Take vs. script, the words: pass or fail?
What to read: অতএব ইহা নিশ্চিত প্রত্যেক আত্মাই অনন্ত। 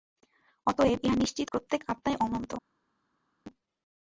pass